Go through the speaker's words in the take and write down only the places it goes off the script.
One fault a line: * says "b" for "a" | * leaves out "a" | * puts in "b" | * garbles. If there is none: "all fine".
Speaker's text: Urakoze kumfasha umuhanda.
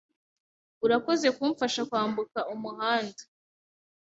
* puts in "kwambuka"